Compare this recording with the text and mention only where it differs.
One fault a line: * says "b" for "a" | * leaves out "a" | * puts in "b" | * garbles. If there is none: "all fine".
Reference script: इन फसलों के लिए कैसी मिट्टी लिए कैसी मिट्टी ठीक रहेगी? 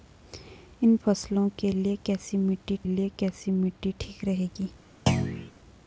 all fine